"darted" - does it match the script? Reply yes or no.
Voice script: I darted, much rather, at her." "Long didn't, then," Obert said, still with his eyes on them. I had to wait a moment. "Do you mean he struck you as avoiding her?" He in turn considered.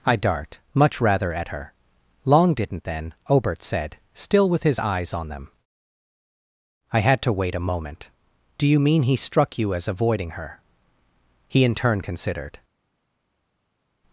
no